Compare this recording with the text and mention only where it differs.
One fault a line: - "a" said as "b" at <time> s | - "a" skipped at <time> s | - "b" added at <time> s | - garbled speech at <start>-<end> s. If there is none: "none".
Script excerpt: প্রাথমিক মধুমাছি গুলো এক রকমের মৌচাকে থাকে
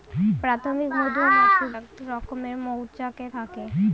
- "গুলো" skipped at 1.6 s